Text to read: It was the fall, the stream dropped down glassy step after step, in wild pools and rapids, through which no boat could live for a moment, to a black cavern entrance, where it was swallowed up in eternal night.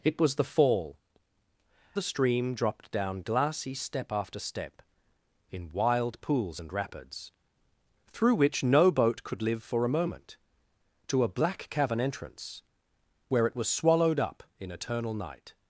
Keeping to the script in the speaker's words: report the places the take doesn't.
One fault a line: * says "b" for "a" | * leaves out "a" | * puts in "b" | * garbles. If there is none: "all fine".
all fine